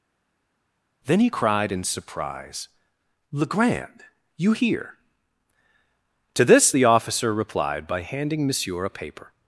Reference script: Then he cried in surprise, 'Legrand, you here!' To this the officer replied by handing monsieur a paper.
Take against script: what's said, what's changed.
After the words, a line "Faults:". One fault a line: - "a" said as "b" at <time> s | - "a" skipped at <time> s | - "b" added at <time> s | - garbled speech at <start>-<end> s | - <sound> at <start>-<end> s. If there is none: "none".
Then he cried in surprise, 'Legrand, you here!' To this the officer replied by handing monsieur a paper.
Faults:
none